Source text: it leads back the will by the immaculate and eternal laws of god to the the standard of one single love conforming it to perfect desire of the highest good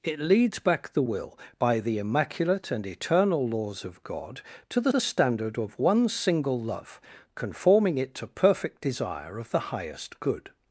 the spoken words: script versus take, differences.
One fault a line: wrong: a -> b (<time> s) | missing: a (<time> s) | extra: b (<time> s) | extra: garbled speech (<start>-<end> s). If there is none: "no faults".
no faults